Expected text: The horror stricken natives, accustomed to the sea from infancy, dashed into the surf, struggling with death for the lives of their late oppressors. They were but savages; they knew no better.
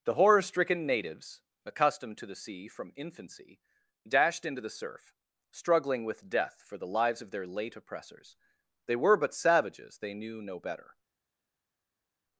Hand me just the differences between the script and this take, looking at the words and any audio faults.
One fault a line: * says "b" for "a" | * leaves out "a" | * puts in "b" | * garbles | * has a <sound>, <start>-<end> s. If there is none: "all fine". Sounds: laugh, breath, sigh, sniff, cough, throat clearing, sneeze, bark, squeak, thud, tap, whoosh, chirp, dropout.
all fine